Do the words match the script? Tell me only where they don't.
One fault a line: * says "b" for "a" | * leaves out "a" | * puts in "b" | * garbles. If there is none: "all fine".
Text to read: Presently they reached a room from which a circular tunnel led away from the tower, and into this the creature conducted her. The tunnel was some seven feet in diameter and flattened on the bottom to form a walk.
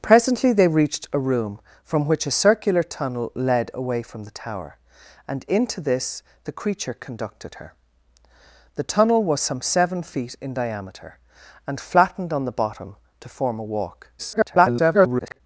* garbles